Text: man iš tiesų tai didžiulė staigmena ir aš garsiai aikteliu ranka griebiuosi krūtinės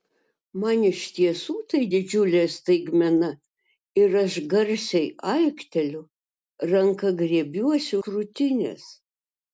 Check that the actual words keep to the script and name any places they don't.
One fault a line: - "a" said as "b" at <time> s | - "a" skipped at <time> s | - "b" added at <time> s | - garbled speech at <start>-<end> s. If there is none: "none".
none